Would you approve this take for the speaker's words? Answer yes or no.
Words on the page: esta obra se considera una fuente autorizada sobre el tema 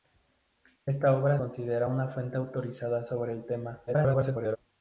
no